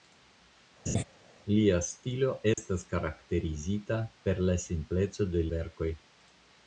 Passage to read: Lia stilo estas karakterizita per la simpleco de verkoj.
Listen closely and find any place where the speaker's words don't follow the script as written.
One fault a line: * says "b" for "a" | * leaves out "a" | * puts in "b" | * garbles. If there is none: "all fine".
all fine